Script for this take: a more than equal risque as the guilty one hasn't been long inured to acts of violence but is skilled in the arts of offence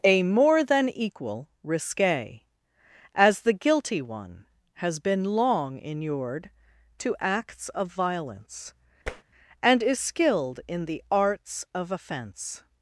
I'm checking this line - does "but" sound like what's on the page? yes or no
no